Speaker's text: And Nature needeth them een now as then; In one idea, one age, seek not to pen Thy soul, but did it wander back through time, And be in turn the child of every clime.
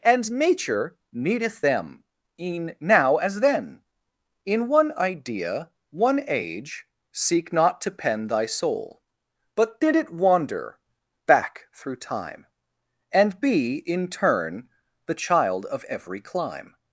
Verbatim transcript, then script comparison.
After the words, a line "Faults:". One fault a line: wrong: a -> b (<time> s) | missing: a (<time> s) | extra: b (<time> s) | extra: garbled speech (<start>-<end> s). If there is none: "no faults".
And Nature needeth them een now as then; In one idea, one age, seek not to pen Thy soul, but did it wander back through time, And be in turn the child of every clime.
Faults:
no faults